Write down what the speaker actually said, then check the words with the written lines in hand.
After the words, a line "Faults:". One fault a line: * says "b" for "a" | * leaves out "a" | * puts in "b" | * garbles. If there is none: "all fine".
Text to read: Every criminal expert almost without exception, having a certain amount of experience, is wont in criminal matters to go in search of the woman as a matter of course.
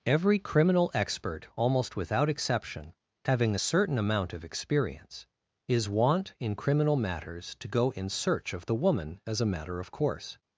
Every criminal expert almost without exception, having a certain amount of experience, is wont in criminal matters to go in search of the woman as a matter of course.
Faults:
all fine